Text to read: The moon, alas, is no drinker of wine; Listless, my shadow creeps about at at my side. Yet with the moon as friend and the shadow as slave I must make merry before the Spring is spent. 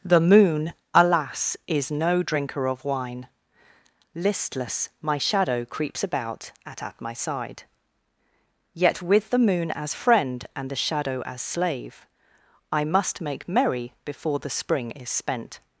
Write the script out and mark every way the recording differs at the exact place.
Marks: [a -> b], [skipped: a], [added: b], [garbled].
The moon, alas, is no drinker of wine; Listless, my shadow creeps about at at my side. Yet with the moon as friend and the shadow as slave I must make merry before the Spring is spent.